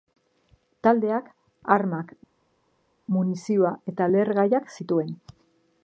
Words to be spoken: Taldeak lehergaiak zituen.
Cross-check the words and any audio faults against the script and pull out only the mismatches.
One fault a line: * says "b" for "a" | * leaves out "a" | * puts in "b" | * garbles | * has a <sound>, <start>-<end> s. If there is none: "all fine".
* puts in "armak munizioa eta"